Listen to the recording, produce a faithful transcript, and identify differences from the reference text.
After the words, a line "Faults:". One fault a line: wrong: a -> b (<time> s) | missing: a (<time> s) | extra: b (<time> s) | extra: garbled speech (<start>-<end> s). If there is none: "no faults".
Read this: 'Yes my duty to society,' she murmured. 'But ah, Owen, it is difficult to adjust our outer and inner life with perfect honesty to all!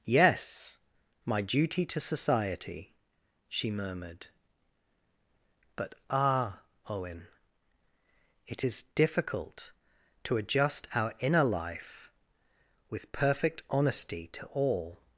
'Yes my duty to society,' she murmured. 'But ah, Owen, it is difficult to adjust our inner life with perfect honesty to all!
Faults:
missing: outer and (11.1 s)